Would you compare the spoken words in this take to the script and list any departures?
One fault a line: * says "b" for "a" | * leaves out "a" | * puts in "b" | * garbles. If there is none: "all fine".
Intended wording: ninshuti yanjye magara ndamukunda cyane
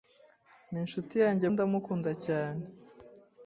* leaves out "magara"